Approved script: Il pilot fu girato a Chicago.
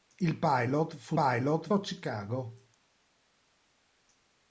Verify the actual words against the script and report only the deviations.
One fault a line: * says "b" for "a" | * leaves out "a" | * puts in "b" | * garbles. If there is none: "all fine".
* says "pilot" for "girato"